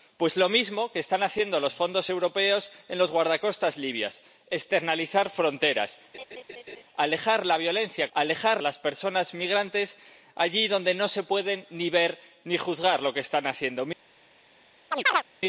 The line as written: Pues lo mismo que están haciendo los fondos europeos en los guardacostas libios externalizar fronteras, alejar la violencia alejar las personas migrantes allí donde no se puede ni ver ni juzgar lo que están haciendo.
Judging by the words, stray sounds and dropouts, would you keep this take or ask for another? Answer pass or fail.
fail